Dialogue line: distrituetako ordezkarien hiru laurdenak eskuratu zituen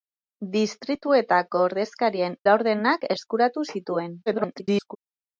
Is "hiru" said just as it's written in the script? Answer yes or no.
no